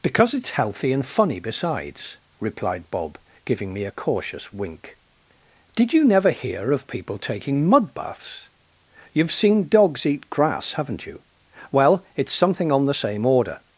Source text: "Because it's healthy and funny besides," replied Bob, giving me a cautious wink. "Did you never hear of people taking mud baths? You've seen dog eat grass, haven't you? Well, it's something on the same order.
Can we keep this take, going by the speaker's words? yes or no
no